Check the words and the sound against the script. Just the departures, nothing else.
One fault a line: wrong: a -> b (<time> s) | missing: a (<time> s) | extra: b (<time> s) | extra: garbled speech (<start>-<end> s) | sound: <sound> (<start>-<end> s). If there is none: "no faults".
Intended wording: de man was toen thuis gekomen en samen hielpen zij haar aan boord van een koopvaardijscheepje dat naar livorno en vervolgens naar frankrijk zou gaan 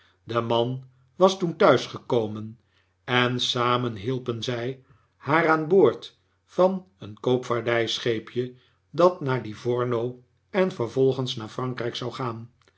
no faults